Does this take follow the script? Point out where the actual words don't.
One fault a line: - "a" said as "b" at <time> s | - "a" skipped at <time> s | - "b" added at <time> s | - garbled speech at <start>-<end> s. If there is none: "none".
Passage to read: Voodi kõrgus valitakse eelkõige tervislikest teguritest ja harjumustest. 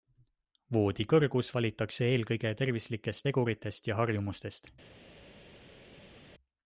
none